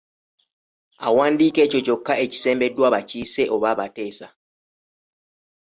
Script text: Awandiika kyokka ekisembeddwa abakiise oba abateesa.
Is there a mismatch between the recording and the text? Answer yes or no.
yes